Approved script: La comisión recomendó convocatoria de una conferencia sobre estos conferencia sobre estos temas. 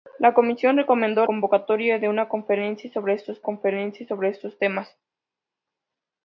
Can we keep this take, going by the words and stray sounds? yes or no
yes